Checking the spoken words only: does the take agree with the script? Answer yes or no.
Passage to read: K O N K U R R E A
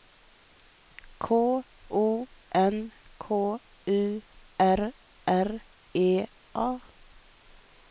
yes